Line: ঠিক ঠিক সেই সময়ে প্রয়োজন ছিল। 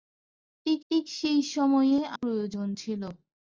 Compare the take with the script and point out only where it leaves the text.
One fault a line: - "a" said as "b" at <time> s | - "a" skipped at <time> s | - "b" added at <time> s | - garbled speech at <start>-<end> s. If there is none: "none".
none